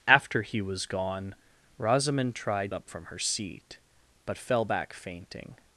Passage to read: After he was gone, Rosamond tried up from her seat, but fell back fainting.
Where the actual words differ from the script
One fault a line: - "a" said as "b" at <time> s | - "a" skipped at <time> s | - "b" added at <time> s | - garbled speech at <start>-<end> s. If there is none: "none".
none